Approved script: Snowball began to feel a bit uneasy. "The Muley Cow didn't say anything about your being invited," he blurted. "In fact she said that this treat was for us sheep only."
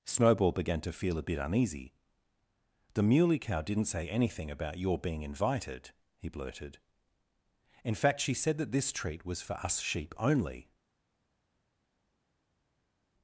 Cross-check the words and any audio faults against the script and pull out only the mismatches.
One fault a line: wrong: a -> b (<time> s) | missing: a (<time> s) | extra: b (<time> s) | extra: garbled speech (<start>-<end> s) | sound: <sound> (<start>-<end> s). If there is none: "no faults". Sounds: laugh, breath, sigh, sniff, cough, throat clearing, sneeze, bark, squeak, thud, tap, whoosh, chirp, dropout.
no faults